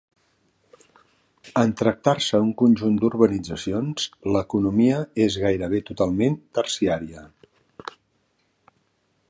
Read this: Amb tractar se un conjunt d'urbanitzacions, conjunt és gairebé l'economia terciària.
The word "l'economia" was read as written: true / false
false